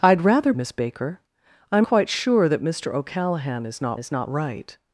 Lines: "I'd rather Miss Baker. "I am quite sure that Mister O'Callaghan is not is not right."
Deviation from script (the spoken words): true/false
false